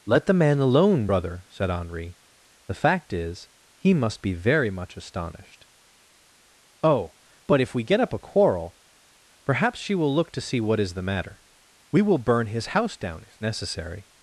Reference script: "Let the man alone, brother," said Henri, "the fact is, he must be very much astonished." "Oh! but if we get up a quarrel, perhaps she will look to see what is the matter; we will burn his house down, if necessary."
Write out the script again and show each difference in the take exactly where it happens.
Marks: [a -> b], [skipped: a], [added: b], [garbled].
"Let the man alone, brother," said Henri, "the fact is, he must be very much astonished." "Oh! but if we get up a quarrel, perhaps she will look to see what is the matter; we will burn his house down, if necessary."